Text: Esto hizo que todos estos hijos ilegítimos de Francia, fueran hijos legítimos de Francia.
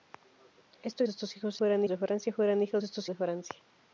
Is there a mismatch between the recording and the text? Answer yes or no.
yes